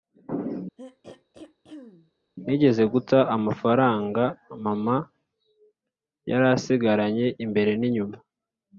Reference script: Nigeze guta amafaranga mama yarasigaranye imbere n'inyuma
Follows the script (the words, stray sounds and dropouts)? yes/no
no